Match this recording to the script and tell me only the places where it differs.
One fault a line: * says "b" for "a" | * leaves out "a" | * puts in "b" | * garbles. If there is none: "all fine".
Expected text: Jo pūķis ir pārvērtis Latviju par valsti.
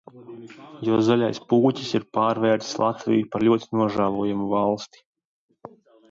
* puts in "zaļais"
* puts in "ļoti nožēlojamu"